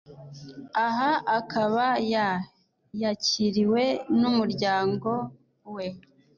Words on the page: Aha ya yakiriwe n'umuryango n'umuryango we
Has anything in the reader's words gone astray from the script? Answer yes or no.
yes